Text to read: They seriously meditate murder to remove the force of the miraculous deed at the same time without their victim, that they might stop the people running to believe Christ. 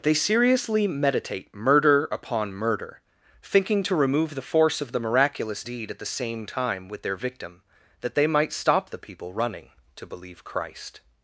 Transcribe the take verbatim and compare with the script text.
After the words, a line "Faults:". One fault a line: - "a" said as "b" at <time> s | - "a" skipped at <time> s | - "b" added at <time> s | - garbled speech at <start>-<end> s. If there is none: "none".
They seriously meditate murder upon murder, thinking to remove the force of the miraculous deed at the same time with their victim, that they might stop the people running to believe Christ.
Faults:
- "upon murder thinking" added at 2.1 s
- "without" said as "with" at 6.9 s